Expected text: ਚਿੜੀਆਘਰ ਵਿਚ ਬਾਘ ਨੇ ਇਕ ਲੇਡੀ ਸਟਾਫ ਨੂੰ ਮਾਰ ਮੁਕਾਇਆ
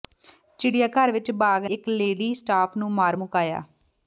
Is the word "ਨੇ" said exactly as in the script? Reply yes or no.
no